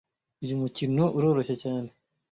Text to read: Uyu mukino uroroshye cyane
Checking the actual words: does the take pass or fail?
pass